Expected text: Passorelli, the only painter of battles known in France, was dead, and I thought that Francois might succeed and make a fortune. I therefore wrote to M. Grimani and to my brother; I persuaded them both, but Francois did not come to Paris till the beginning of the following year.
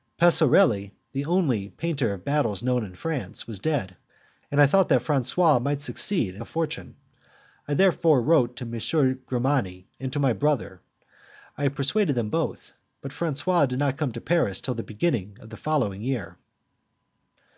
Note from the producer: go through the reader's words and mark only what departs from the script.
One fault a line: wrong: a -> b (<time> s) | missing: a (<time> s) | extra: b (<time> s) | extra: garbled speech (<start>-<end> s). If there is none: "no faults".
missing: make (6.4 s)